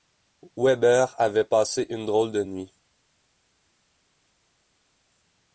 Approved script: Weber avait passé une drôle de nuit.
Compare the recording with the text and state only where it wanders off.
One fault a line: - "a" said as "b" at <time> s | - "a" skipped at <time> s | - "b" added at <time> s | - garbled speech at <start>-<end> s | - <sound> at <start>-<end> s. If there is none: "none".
none